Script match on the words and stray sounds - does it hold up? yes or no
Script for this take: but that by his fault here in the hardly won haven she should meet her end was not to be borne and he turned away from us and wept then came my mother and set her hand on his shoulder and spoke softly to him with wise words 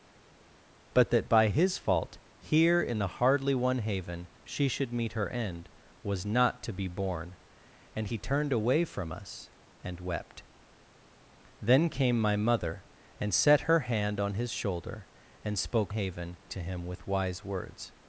no